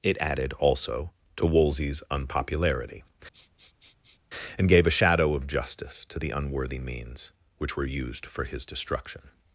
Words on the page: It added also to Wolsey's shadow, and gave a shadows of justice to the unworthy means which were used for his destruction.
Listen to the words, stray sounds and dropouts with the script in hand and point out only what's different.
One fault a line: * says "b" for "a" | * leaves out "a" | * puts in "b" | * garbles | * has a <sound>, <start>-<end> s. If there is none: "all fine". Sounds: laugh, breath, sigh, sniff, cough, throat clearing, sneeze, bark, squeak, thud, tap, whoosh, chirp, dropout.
* says "unpopularity" for "shadow"
* has a sniff, 3.3-4.2 s
* says "shadow" for "shadows"